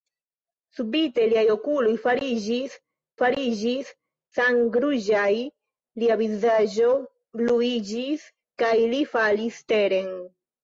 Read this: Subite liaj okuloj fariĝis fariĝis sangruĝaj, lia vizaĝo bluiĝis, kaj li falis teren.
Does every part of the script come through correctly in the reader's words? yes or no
yes